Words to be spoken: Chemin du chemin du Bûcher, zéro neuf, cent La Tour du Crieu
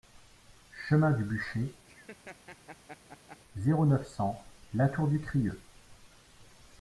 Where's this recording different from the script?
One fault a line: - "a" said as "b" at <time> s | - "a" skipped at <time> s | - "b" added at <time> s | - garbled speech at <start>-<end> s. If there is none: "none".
- "chemin du" skipped at 1.2 s